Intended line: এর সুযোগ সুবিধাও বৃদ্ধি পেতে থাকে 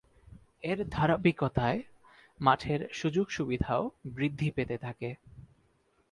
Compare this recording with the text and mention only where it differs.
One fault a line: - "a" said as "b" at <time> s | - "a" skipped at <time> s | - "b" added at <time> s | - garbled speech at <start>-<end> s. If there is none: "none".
- "ধারাবাহিকতায় মাঠের" added at 0.9 s